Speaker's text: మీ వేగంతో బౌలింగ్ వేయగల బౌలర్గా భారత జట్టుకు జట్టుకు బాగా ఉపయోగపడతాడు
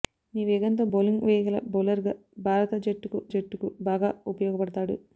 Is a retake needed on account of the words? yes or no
no